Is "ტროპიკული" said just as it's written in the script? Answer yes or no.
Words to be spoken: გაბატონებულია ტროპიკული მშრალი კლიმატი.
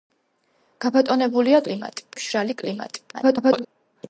no